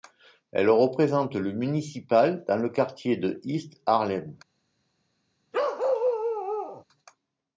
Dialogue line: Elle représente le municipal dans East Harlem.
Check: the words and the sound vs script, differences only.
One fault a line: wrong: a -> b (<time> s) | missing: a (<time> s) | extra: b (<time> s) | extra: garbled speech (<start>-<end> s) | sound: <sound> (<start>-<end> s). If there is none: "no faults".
extra: le quartier de (2.6 s)
sound: bark (5.5-6.8 s)